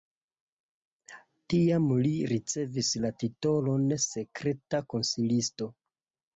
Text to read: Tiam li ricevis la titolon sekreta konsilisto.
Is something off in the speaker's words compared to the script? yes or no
no